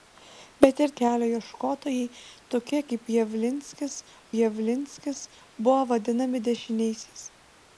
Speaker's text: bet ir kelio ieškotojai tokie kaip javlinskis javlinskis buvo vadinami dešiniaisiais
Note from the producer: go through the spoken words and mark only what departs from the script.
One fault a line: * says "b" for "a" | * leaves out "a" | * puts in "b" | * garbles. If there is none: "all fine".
all fine